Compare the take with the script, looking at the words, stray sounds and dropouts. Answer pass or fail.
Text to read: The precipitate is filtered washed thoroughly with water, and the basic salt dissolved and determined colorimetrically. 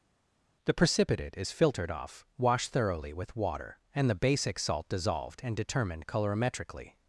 fail